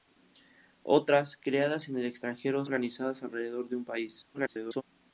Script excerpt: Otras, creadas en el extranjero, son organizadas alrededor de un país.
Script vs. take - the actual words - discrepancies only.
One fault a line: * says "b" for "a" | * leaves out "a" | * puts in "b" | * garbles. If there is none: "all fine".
* leaves out "son"
* garbles